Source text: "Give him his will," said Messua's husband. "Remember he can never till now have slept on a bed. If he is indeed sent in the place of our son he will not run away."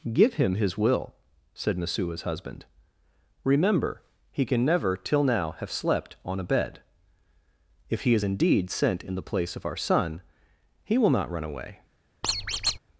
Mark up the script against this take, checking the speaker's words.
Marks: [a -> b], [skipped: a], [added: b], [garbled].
"Give him his will," said Messua's husband. "Remember he can never till now have slept on a bed. If he is indeed sent in the place of our son he will not run away."